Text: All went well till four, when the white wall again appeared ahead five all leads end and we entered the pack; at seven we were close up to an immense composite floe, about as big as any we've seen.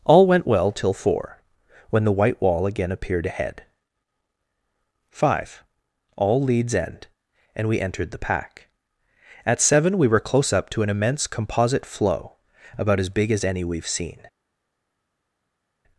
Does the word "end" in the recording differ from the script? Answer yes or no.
no